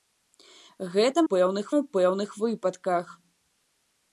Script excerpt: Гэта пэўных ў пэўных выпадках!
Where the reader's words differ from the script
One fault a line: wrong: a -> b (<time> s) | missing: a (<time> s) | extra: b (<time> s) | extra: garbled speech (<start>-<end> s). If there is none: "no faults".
no faults